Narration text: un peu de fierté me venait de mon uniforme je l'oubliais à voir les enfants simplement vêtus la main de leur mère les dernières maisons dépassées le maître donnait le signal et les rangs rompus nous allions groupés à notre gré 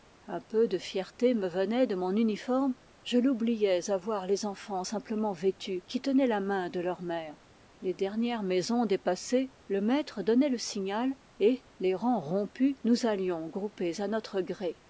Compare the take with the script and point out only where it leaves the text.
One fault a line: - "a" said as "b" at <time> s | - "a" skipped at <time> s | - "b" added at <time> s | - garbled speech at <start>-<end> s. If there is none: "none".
- "qui tenaient" added at 5.9 s